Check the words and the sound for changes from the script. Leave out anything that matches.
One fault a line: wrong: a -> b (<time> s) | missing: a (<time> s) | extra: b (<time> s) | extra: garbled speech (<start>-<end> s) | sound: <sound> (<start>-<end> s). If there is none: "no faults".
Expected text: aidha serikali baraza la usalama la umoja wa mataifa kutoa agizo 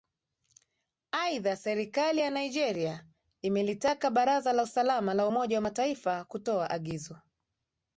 extra: ya nigeria imelitaka (2.2 s)